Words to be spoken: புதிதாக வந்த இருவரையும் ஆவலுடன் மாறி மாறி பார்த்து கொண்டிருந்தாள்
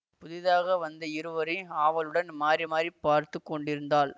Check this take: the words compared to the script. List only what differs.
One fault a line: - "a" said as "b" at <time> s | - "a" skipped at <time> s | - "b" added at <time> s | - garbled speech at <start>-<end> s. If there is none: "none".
none